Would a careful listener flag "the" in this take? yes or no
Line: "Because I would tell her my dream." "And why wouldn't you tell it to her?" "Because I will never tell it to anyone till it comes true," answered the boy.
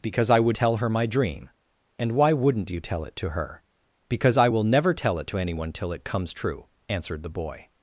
no